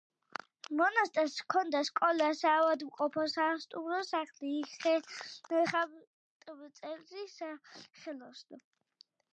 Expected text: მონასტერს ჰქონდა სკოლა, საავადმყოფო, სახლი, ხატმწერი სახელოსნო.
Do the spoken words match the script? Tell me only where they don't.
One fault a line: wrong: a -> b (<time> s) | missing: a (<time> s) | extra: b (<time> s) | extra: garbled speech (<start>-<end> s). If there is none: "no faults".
extra: სასტუმრო (3.3 s)